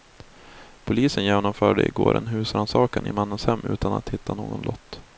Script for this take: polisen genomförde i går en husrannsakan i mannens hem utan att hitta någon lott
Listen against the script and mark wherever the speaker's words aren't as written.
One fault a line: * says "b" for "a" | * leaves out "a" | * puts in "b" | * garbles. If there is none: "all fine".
all fine